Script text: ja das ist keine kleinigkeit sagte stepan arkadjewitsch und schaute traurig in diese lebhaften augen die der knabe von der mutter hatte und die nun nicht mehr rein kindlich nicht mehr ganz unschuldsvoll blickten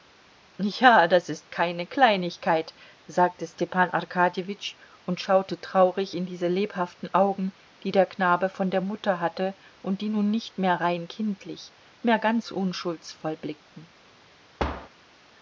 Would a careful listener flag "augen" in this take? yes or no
no